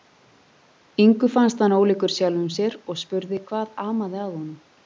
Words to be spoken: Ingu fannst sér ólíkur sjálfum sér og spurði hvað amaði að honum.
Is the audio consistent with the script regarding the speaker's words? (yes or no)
no